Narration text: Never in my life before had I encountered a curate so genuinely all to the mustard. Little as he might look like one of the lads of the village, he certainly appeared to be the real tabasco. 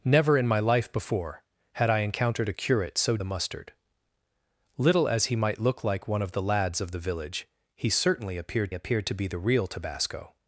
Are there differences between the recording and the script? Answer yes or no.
yes